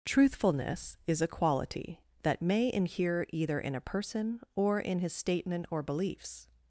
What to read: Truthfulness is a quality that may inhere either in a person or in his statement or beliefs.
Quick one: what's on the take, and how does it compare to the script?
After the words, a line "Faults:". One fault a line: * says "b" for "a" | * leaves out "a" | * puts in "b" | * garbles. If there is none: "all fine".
Truthfulness is a quality that may inhere either in a person or in his statement or beliefs.
Faults:
all fine